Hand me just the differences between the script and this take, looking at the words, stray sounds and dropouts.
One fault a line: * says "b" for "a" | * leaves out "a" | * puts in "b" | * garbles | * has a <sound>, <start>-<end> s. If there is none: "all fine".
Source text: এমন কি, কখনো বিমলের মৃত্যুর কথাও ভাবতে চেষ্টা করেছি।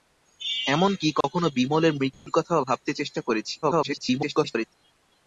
* has a dropout, 1.2-1.2 s
* has a dropout, 2.1-2.3 s
* garbles